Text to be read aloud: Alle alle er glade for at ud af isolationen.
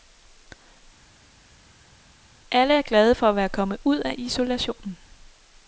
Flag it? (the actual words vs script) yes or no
yes